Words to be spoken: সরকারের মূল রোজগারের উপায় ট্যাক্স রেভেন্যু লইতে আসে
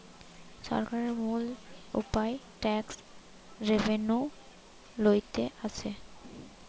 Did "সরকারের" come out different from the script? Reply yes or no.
no